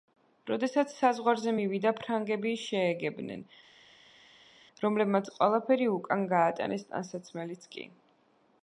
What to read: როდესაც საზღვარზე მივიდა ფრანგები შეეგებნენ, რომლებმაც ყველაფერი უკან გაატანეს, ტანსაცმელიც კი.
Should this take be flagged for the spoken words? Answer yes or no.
no